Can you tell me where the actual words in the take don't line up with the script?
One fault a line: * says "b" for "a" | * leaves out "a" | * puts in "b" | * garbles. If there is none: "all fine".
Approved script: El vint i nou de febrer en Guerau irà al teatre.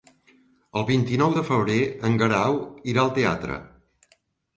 all fine